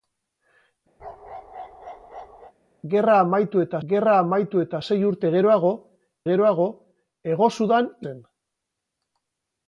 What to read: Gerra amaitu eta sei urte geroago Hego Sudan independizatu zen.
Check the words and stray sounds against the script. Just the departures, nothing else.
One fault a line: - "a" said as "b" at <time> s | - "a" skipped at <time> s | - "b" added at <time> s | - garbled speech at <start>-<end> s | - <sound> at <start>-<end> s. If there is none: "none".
- bark at 1.0-2.5 s
- "gerra amaitu eta" added at 3.9 s
- "geroago" added at 6.3 s
- "independizatu" skipped at 7.9 s